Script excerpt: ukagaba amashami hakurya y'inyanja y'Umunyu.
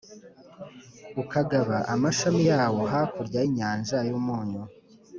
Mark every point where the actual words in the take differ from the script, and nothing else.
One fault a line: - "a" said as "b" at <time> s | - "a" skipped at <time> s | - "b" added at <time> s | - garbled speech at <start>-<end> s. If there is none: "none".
- "yawo" added at 2.5 s